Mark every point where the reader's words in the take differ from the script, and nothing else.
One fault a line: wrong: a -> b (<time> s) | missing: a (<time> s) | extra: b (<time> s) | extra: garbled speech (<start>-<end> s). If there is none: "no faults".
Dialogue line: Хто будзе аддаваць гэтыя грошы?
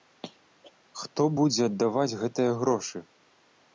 no faults